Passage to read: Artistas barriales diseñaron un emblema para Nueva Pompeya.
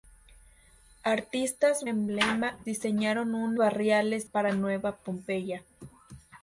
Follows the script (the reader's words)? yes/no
no